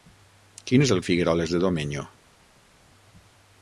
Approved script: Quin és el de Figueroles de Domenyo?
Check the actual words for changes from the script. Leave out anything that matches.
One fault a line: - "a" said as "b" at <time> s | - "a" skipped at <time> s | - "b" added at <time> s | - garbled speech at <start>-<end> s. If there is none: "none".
none